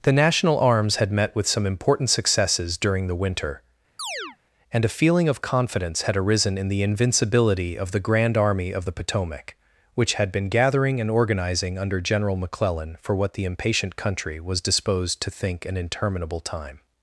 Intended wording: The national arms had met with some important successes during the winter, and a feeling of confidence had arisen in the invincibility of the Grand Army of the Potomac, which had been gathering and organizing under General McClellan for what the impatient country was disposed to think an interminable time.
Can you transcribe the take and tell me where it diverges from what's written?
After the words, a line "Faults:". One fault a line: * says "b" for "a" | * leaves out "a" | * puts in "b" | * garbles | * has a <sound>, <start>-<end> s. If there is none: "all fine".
The national arms had met with some important successes during the winter, and a feeling of confidence had arisen in the invincibility of the Grand Army of the Potomac, which had been gathering and organizing under General McClellan for what the impatient country was disposed to think an interminable time.
Faults:
* has a chirp, 4.0-4.4 s